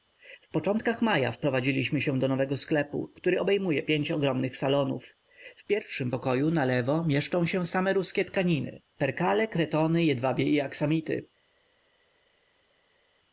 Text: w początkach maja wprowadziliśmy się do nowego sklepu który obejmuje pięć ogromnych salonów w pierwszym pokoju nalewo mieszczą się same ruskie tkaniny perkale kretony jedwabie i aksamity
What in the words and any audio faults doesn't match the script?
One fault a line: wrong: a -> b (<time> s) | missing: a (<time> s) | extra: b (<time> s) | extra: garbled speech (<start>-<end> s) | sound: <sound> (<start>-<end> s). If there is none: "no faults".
no faults